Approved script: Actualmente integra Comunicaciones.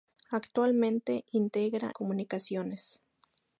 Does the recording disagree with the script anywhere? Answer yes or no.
no